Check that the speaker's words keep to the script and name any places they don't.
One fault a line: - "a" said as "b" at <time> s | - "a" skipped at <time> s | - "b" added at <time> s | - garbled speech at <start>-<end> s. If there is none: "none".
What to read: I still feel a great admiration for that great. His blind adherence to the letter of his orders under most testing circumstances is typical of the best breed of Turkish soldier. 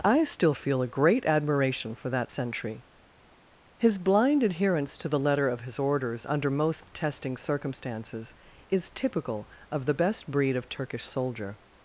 - "great" said as "sentry" at 2.3 s